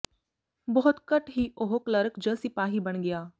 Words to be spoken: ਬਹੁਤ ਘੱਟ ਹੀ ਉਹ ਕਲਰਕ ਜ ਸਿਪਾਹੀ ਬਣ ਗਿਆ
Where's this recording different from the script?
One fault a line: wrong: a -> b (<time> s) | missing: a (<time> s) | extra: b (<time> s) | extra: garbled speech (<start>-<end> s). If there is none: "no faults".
no faults